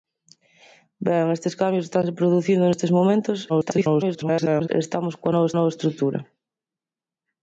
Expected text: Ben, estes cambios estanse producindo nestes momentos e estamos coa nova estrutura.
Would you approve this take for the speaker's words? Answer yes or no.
no